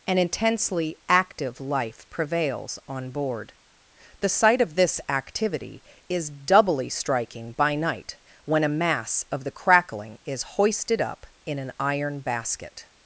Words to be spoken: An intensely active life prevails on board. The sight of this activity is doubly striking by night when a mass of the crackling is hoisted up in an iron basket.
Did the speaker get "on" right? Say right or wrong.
right